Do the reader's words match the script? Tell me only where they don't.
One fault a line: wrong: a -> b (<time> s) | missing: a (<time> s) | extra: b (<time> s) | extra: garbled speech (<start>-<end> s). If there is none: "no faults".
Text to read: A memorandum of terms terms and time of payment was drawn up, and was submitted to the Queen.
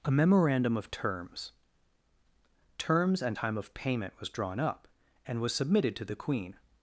no faults